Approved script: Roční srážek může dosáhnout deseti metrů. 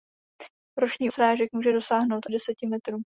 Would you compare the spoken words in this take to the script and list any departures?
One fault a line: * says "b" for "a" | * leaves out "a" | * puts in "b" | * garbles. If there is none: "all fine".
all fine